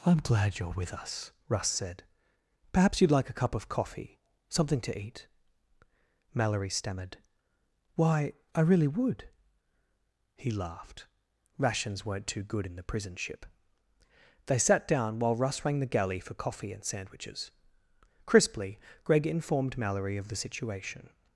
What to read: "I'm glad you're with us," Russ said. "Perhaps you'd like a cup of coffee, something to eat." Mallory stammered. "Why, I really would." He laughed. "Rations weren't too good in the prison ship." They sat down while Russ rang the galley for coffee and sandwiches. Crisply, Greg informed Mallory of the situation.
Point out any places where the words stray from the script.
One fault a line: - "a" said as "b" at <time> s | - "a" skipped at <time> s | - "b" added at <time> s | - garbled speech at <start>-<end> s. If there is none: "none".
none